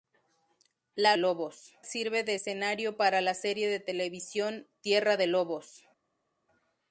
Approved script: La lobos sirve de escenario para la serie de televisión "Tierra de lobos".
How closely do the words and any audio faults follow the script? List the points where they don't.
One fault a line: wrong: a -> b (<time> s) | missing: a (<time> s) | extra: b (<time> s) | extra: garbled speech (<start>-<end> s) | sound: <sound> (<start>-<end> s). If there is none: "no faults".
no faults